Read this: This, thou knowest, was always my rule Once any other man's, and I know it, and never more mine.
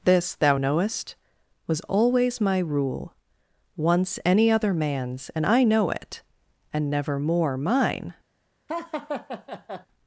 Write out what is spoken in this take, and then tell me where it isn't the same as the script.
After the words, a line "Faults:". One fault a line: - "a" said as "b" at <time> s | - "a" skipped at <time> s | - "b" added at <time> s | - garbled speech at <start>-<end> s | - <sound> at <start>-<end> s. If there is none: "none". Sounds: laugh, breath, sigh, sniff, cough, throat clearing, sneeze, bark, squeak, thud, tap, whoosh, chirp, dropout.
This, thou knowest, was always my rule Once any other man's, and I know it, and never more mine.
Faults:
- laugh at 8.7-9.9 s